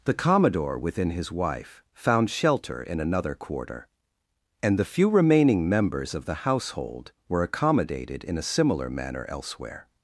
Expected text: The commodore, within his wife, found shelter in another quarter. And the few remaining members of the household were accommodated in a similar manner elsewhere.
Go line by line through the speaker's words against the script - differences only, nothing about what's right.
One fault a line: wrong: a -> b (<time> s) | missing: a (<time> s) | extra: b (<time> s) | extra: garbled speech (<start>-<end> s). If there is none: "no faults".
no faults